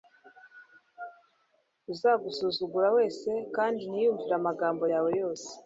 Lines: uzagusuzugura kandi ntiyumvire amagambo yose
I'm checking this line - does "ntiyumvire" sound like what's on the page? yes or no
yes